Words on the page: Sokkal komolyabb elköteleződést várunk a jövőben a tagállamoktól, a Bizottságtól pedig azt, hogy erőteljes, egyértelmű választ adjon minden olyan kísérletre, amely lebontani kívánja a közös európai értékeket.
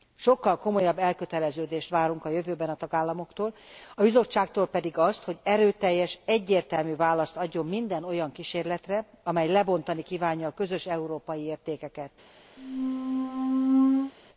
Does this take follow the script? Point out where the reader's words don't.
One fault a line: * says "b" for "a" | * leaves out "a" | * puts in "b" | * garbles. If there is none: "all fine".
all fine